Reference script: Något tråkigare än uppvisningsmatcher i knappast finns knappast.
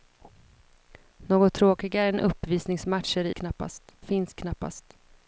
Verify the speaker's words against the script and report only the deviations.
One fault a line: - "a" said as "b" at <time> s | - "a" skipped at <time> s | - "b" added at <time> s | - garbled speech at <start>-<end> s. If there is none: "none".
none